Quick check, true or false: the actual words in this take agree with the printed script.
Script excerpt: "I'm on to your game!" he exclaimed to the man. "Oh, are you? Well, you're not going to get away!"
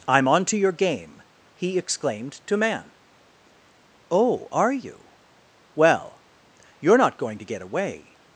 false